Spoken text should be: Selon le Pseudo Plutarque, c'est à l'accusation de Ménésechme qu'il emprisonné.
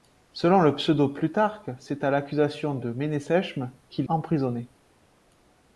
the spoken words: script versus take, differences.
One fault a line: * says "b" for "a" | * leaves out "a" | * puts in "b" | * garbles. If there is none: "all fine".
all fine